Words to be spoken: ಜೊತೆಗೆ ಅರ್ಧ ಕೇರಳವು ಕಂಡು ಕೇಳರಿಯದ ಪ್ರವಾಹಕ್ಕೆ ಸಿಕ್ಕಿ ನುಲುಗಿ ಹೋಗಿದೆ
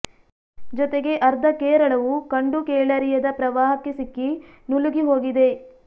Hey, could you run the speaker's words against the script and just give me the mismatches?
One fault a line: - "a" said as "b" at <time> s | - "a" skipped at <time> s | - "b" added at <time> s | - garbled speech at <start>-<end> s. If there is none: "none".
none